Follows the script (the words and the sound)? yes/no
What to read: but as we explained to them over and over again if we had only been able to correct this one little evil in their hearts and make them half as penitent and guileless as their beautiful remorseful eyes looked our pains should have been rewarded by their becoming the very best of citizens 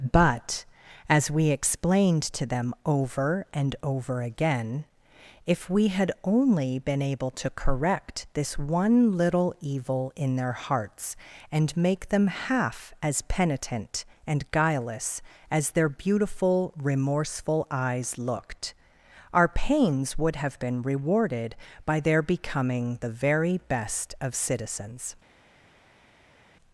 no